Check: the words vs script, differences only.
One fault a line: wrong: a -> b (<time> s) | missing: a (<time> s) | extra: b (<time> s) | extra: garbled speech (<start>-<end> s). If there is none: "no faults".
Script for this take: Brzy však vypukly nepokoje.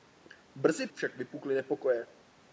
no faults